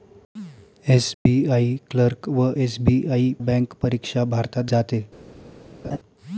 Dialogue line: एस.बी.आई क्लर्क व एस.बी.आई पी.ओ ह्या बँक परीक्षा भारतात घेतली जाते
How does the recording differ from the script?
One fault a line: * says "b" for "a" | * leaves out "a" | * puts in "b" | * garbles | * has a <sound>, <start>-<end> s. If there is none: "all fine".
* has a dropout, 1.1-1.3 s
* leaves out "पी.ओ ह्या"
* leaves out "घेतली"
* has a laugh, 5.8-6.0 s